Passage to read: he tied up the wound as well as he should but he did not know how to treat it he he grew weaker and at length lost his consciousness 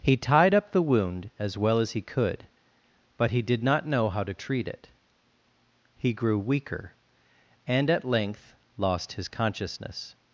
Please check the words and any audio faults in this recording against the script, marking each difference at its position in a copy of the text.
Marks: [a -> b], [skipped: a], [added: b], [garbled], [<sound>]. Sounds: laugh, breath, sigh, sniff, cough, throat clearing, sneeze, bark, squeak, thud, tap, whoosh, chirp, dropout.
he tied up the wound as well as he [should -> could] but he did not know how to treat it he [skipped: he] grew weaker and at length lost his consciousness